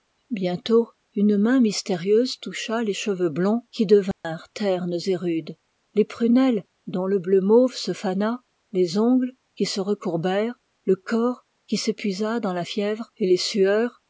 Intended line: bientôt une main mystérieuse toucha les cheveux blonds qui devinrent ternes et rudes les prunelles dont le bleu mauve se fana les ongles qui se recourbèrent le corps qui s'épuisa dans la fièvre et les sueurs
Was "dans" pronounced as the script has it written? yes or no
yes